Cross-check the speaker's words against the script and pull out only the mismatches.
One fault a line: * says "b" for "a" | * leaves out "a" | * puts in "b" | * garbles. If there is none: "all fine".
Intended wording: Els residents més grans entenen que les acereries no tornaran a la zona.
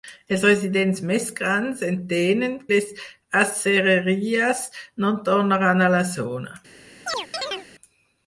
* leaves out "que"